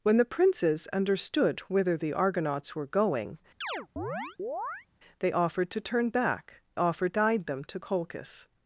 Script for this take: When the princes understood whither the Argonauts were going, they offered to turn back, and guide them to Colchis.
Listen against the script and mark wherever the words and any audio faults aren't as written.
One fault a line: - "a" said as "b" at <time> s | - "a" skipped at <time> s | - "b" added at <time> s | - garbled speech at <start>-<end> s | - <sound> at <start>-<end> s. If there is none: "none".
- chirp at 3.6-4.9 s
- "and" said as "offered" at 6.7 s